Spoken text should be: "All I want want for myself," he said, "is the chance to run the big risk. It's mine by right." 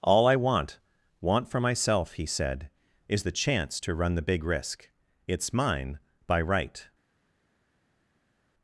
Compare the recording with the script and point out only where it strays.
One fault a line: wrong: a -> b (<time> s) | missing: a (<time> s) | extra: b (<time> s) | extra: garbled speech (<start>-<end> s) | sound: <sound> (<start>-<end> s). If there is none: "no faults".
no faults